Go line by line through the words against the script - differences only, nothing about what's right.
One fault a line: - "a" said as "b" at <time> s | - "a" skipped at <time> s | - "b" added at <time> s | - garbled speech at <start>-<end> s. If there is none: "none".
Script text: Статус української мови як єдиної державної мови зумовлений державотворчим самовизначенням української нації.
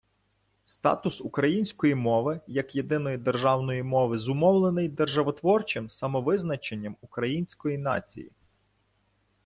none